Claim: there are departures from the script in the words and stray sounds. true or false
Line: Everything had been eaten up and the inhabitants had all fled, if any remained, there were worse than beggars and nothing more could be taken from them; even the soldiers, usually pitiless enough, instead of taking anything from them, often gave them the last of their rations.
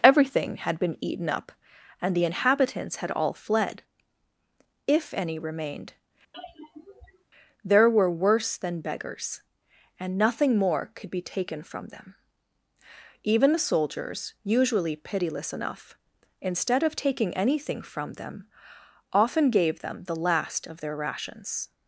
true